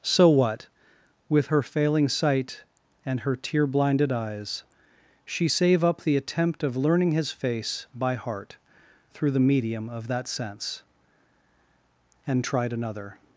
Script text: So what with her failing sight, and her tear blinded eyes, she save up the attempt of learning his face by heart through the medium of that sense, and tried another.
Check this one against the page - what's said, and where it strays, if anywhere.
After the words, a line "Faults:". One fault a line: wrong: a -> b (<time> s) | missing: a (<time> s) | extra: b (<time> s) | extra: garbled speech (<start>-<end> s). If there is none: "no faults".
So what with her failing sight, and her tear blinded eyes, she save up the attempt of learning his face by heart through the medium of that sense, and tried another.
Faults:
no faults